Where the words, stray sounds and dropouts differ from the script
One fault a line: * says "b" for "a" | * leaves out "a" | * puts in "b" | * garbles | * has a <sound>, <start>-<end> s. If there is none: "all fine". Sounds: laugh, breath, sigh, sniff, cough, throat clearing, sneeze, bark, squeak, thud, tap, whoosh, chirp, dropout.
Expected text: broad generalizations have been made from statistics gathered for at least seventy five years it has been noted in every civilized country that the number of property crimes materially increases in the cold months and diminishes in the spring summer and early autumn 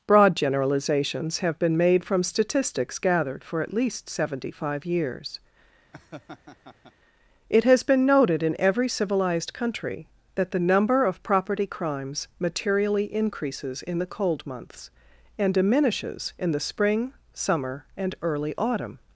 * has a laugh, 5.9-6.9 s